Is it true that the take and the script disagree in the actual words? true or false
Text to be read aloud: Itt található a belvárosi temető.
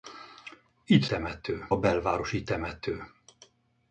true